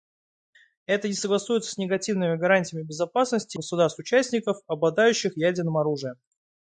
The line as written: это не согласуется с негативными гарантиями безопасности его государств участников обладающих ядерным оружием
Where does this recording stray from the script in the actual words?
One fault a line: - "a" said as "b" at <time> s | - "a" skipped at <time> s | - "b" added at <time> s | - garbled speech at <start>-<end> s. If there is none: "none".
- "его" skipped at 3.6 s